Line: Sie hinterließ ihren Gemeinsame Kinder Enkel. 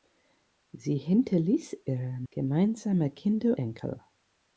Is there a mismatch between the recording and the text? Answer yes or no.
no